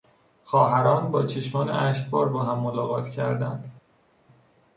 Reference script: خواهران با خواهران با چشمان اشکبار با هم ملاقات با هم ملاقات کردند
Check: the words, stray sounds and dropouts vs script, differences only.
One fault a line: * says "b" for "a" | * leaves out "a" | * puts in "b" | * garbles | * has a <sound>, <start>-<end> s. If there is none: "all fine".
* leaves out "خواهران با"
* leaves out "با هم ملاقات"